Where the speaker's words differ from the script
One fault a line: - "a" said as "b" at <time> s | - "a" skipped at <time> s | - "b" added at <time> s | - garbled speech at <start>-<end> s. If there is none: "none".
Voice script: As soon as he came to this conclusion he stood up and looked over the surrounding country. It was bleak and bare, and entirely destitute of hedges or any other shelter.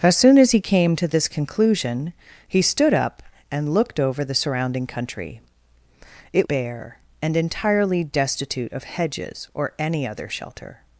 - "was bleak and" skipped at 6.5 s